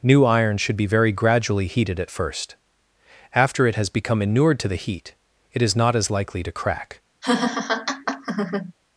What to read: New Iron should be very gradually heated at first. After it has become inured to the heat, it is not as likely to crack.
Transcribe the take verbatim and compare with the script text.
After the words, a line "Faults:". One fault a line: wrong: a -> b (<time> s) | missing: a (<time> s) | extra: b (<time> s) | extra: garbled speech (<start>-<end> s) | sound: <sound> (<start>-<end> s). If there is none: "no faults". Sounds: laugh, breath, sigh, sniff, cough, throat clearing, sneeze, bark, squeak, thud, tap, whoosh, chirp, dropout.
New Iron should be very gradually heated at first. After it has become inured to the heat, it is not as likely to crack.
Faults:
sound: laugh (7.2-8.7 s)